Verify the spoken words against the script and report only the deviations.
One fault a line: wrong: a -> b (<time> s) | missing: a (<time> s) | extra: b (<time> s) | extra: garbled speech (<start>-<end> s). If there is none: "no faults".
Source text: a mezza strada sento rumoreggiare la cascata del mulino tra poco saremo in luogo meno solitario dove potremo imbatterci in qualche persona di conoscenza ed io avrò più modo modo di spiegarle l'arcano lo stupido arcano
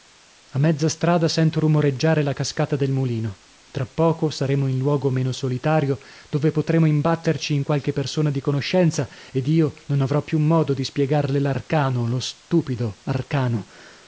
extra: non (9.8 s)
missing: modo (10.7 s)